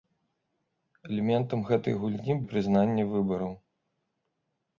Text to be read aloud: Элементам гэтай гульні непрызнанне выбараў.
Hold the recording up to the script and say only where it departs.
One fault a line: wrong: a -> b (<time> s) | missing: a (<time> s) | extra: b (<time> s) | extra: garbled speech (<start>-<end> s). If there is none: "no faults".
no faults